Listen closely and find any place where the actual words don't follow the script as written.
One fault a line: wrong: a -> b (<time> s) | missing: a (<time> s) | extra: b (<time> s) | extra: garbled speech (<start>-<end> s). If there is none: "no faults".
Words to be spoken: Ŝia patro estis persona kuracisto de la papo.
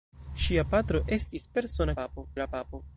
wrong: kuracisto -> papo (2.0 s)